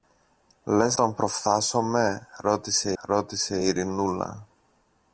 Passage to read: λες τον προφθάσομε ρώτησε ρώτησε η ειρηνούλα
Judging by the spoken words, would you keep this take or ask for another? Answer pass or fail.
pass